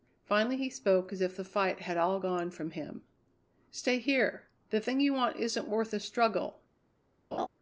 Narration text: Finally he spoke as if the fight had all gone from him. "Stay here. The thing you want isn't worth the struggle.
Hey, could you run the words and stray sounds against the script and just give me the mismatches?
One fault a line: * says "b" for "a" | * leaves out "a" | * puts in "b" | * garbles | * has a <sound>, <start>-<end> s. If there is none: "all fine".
* has a laugh, 7.3-7.5 s